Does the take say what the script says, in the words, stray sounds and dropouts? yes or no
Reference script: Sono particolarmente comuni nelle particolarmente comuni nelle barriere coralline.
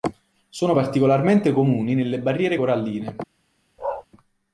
no